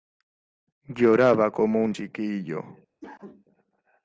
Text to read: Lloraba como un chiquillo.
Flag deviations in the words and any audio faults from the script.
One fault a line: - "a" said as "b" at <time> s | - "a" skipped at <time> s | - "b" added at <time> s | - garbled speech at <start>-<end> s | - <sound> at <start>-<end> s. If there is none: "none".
- cough at 3.0-3.4 s